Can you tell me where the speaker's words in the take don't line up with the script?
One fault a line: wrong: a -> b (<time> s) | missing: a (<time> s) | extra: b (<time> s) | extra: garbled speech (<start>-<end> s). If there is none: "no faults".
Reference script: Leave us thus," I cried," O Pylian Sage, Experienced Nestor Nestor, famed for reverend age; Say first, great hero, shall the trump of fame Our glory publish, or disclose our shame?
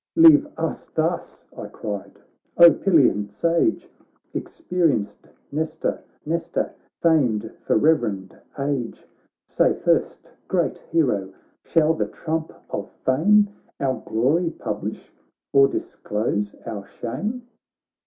no faults